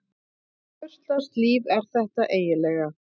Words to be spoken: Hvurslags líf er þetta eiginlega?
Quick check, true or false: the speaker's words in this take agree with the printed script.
true